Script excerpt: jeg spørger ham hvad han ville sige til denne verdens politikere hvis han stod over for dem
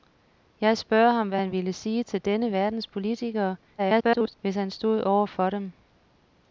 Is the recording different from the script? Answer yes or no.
yes